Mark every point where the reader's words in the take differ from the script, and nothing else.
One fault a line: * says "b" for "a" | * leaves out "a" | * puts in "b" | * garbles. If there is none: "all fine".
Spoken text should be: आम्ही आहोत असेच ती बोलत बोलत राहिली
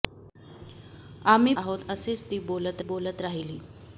all fine